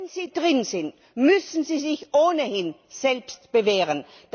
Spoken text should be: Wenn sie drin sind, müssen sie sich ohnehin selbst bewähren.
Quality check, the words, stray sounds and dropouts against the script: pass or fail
pass